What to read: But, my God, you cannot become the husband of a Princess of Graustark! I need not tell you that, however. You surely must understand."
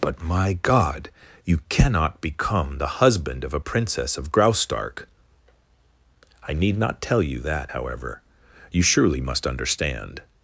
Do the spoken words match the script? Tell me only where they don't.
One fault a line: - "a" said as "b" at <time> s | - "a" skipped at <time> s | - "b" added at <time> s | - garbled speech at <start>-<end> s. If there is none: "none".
none